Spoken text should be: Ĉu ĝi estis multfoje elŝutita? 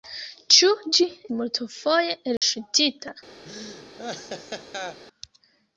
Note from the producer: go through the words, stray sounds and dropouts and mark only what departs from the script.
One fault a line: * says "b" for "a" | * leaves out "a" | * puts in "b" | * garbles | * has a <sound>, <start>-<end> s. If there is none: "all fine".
* leaves out "estis"
* has a dropout, 2.4-2.4 s
* has a laugh, 3.4-5.0 s